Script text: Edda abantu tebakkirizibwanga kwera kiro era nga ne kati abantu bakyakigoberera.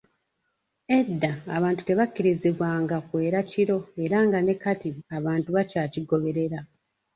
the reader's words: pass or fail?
pass